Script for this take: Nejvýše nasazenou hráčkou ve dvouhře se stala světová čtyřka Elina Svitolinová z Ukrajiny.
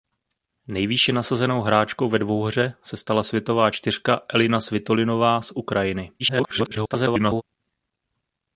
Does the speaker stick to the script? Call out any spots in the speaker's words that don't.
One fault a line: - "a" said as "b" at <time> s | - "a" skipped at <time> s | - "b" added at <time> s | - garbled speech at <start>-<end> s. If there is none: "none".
- garbled speech at 6.2-7.4 s